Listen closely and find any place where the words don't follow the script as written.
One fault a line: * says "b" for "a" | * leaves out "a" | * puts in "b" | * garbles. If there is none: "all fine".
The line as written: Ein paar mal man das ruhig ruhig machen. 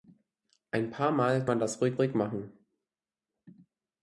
all fine